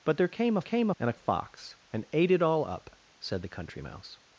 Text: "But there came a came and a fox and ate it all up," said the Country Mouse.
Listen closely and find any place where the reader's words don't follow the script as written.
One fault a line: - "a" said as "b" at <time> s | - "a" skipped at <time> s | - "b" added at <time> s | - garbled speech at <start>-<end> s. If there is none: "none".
none